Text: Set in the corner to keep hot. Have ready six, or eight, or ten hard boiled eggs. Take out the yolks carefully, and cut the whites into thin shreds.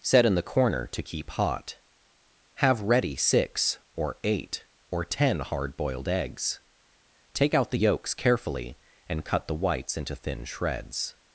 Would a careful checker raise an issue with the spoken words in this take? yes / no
no